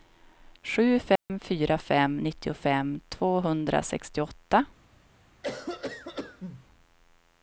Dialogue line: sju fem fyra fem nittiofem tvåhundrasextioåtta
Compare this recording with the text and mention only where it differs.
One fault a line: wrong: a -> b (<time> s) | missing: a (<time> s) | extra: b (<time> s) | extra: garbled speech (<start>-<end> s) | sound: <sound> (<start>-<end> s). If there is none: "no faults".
sound: dropout (1.2-1.3 s)
sound: cough (5.4-6.7 s)